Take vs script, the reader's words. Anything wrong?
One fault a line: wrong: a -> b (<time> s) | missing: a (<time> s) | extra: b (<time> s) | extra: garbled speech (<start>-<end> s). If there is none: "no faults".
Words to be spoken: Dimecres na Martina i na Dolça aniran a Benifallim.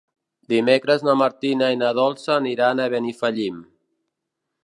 no faults